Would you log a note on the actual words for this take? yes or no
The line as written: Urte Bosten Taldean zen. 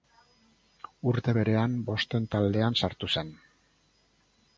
yes